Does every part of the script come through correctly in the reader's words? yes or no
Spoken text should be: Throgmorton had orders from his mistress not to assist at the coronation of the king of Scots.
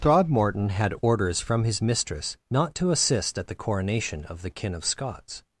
no